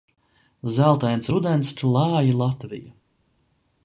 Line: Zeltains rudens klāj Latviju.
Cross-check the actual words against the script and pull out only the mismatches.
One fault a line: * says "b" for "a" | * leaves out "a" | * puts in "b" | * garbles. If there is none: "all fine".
all fine